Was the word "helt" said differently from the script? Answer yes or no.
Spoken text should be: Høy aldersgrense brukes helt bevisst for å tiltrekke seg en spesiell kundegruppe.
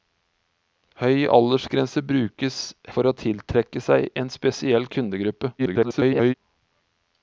yes